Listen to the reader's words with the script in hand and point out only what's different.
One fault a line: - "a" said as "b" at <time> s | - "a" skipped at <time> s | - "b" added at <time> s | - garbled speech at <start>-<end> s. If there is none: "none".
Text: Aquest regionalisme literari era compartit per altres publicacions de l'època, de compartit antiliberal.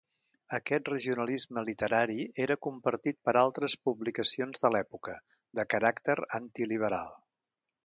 - "compartit" said as "caràcter" at 5.7 s